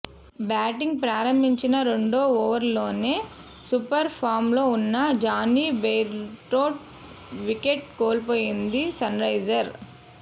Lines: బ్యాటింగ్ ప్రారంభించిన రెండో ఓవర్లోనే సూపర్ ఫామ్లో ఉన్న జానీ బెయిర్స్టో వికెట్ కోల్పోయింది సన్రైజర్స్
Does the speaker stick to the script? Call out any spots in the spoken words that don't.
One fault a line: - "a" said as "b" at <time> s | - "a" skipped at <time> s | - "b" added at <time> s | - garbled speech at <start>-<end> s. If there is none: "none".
none